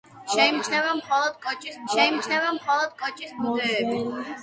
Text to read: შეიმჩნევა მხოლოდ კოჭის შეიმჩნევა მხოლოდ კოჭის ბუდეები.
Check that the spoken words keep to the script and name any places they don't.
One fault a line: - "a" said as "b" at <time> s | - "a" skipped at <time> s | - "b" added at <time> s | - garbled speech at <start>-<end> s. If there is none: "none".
none